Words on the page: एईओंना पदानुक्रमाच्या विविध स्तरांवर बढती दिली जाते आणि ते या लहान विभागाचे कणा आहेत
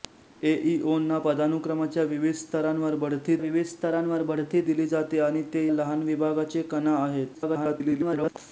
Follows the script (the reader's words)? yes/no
no